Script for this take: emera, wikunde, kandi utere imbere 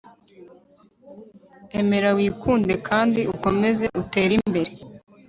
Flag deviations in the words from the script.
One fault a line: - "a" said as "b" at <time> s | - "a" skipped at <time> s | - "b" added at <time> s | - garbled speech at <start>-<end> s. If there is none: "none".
- "ukomeze" added at 3.3 s